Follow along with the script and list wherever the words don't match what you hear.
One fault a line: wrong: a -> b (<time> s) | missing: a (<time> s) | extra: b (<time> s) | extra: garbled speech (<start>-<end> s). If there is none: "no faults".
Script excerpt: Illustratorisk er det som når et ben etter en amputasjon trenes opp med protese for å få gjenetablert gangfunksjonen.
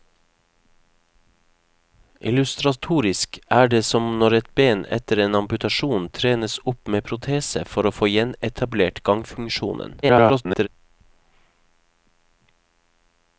extra: garbled speech (10.0-10.7 s)